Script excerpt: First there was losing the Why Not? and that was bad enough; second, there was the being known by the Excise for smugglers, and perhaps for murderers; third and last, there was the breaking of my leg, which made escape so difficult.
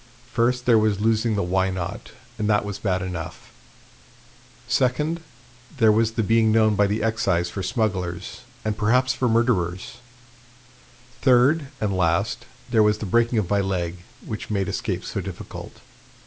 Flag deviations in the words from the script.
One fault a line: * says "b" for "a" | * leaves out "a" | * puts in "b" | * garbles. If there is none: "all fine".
all fine